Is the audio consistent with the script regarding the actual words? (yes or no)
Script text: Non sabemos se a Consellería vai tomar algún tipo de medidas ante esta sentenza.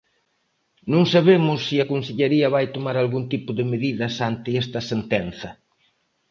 yes